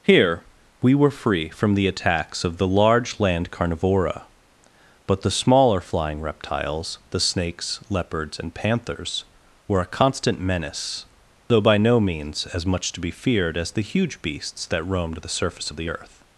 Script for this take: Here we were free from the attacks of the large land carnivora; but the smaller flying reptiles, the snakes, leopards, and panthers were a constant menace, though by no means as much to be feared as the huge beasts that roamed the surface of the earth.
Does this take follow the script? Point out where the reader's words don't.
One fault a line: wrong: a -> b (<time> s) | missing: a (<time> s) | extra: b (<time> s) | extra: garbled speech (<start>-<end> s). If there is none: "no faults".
no faults